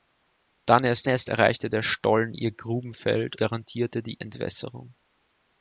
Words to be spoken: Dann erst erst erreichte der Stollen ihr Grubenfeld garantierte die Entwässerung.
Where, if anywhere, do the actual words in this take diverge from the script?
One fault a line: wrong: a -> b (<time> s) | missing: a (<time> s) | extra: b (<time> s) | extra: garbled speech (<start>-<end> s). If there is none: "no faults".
no faults